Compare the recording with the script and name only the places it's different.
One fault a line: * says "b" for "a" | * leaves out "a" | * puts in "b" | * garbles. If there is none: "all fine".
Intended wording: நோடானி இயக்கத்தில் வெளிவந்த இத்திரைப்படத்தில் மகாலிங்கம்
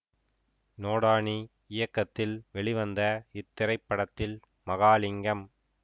all fine